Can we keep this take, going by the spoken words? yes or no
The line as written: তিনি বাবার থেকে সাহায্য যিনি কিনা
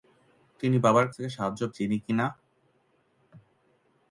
yes